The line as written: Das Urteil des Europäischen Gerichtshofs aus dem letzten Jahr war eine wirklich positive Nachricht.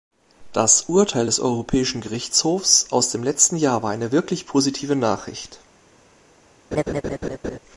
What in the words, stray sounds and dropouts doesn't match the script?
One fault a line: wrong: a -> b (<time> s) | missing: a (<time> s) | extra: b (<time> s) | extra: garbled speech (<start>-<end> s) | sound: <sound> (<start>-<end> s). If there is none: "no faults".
sound: laugh (6.7-7.6 s)